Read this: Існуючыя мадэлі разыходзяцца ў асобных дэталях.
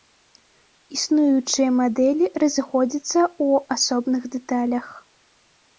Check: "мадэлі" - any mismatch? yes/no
no